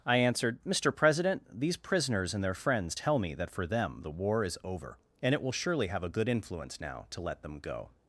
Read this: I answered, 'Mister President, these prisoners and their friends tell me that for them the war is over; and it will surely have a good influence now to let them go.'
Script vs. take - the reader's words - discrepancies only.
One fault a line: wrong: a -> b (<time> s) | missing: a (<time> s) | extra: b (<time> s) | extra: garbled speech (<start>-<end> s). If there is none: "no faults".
no faults